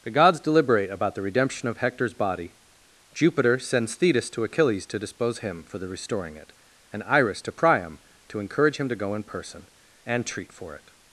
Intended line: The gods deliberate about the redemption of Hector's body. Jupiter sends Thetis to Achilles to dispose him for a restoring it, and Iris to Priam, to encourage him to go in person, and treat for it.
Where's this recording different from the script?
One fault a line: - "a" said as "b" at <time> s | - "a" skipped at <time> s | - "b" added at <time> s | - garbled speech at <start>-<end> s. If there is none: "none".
- "a" said as "the" at 5.8 s